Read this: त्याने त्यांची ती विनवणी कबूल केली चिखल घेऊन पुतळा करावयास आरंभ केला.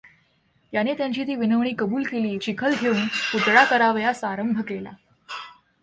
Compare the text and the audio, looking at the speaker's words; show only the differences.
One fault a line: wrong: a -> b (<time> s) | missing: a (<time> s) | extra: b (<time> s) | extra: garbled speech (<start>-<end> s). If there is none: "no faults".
no faults